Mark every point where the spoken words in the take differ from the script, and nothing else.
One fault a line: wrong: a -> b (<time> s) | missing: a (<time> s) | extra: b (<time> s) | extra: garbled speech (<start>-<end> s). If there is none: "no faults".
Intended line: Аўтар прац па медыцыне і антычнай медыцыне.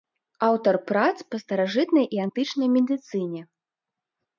wrong: медыцыне -> старажытнай (1.4 s)